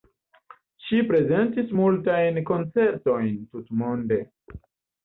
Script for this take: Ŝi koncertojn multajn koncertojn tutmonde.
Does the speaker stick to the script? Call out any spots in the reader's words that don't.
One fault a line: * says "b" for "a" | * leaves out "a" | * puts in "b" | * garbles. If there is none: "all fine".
* says "prezentis" for "koncertojn"